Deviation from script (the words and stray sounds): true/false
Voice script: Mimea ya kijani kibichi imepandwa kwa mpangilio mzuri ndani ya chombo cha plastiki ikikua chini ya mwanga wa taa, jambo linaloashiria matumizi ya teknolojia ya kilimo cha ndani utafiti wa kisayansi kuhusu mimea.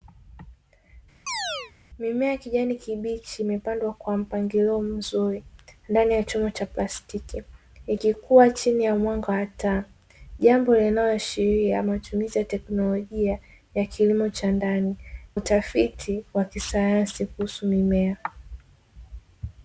true